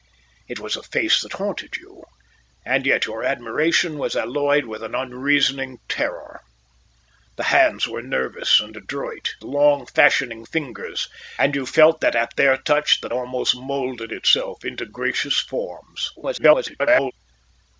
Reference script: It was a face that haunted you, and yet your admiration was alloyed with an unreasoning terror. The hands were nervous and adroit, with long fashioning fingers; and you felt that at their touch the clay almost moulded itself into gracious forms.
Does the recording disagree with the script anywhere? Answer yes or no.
yes